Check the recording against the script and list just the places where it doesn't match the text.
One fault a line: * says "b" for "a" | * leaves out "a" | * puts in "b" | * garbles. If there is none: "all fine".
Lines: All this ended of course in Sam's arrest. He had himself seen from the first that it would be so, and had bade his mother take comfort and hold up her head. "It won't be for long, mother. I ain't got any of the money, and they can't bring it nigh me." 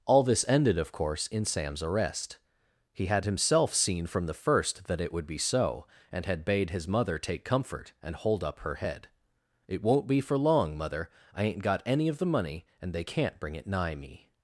all fine